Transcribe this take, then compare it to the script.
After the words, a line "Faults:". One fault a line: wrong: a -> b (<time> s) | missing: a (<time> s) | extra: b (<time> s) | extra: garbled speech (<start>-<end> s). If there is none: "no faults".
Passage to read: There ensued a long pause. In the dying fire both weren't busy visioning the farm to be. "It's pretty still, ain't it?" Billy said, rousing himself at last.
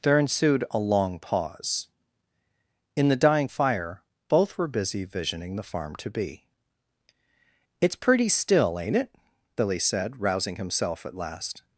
There ensued a long pause. In the dying fire both were busy visioning the farm to be. "It's pretty still, ain't it?" Billy said, rousing himself at last.
Faults:
wrong: weren't -> were (4.6 s)